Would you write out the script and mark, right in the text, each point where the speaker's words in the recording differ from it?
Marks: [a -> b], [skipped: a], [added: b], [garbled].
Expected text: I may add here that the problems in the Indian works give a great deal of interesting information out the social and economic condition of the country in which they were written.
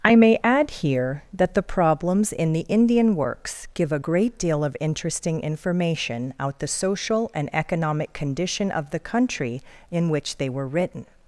I may add here that the problems in the Indian works give a great deal of interesting information out the social and economic condition of the country in which they were written.